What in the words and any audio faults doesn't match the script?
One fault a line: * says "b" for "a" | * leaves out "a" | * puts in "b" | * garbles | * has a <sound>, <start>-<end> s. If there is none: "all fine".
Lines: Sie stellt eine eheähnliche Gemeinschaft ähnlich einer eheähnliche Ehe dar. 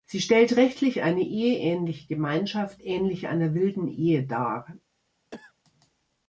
* puts in "rechtlich"
* says "wilden" for "eheähnliche"
* has a cough, 5.3-5.5 s